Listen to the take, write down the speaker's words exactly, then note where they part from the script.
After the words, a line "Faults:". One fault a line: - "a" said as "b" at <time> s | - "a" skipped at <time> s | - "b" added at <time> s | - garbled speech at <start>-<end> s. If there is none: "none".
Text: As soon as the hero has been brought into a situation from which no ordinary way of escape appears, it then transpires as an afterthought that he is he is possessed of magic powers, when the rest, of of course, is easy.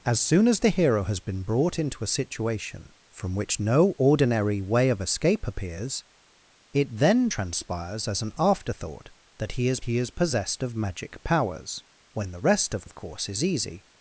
As soon as the hero has been brought into a situation from which no ordinary way of escape appears, it then transpires as an afterthought that he is he is possessed of magic powers, when the rest, of of course, is easy.
Faults:
none